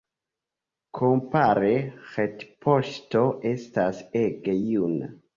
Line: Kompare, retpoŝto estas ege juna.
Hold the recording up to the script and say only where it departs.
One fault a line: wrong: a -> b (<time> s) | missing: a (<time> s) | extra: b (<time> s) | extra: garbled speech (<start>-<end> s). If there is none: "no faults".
no faults